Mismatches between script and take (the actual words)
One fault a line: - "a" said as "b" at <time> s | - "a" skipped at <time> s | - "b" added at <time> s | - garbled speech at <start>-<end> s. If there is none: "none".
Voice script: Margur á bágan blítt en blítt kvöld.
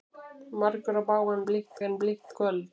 none